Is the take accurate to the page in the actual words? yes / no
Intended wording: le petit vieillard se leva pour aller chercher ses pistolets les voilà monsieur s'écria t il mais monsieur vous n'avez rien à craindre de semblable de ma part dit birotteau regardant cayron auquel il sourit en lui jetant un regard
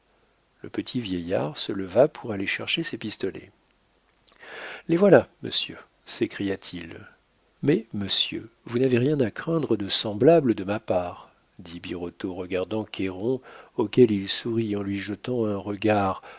yes